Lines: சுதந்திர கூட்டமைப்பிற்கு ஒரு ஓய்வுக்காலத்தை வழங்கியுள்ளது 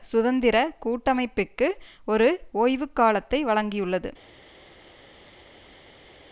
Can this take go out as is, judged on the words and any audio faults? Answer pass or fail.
pass